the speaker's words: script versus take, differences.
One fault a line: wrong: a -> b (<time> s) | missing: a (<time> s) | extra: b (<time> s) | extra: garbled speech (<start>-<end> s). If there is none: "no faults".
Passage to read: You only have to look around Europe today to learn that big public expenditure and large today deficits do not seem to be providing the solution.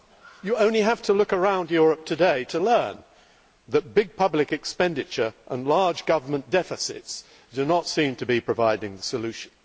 wrong: today -> government (6.1 s)